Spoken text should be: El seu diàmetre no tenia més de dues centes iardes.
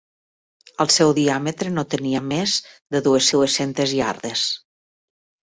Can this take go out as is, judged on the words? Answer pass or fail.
fail